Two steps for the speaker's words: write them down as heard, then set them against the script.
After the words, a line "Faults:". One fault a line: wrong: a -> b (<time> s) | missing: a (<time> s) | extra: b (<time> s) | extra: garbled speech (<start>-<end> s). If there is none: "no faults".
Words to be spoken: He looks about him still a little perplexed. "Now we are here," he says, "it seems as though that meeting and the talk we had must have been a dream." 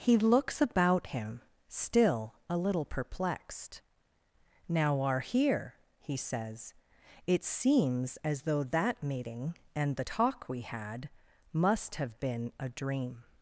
He looks about him still a little perplexed. "Now are here," he says, "it seems as though that meeting and the talk we had must have been a dream."
Faults:
missing: we (5.0 s)